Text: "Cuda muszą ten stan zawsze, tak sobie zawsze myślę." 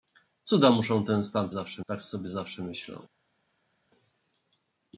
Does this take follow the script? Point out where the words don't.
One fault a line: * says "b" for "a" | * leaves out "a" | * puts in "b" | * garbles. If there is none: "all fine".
all fine